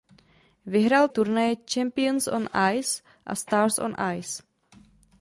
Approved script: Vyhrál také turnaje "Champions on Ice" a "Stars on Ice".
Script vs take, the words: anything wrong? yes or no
yes